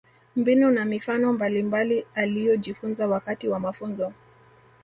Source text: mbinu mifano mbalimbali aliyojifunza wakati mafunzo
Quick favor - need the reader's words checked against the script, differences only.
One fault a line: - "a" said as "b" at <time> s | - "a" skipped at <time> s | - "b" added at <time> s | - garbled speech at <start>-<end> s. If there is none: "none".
- "na" added at 0.7 s
- "wa" added at 3.5 s